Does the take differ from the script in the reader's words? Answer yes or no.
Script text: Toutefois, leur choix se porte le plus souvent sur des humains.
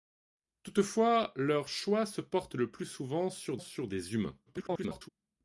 yes